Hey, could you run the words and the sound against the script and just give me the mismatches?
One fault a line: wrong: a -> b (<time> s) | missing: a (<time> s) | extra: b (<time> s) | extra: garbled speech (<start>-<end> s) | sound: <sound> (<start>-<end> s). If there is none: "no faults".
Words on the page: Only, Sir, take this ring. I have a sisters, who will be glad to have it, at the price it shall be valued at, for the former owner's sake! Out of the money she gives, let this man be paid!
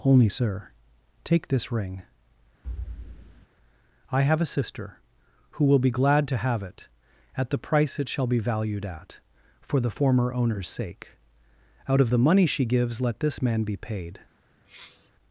sound: thud (2.6-3.5 s)
wrong: sisters -> sister (4.4 s)
sound: sniff (14.6-15.1 s)